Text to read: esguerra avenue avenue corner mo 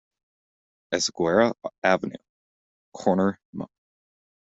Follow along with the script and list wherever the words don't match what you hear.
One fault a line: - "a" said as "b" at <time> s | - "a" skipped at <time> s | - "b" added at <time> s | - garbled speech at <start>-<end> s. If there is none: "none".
- "avenue" skipped at 2.1 s